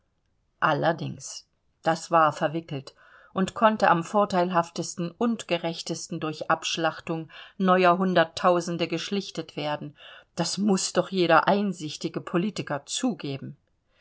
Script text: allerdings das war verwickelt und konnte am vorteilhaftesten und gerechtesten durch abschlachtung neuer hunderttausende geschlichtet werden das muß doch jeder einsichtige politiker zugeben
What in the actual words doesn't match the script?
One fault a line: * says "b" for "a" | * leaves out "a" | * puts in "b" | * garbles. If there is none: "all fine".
all fine